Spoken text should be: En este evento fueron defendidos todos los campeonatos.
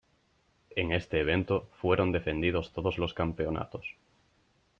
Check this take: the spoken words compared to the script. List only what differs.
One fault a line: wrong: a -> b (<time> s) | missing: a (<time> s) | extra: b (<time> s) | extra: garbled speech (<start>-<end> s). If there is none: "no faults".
no faults